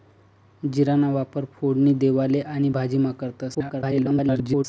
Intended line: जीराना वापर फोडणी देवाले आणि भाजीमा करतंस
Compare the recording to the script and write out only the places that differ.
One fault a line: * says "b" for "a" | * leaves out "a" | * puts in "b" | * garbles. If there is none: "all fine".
* garbles